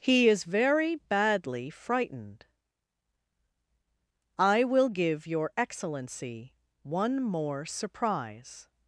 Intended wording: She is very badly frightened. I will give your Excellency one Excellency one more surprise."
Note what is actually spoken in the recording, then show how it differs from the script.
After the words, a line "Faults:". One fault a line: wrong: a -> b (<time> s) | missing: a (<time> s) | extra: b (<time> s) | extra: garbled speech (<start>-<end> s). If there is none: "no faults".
He is very badly frightened. I will give your Excellency one more surprise."
Faults:
wrong: She -> He (0.0 s)
missing: Excellency one (7.2 s)